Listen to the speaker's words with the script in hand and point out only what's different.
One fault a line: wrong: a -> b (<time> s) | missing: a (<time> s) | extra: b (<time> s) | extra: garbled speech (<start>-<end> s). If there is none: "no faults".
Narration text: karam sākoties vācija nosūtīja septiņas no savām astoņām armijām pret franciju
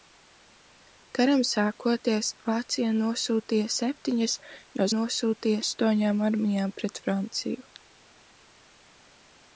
wrong: savām -> nosūtīja (4.9 s)